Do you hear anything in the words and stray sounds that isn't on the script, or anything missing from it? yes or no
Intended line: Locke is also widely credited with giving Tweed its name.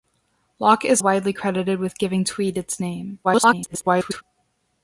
yes